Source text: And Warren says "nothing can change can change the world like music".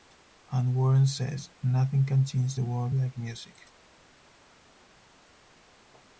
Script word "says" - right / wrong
right